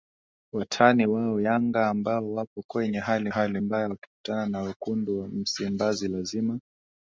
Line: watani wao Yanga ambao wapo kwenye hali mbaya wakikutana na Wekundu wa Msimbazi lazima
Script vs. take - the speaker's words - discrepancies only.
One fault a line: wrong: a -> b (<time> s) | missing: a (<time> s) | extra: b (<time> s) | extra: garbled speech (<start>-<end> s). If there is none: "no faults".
extra: hali (3.3 s)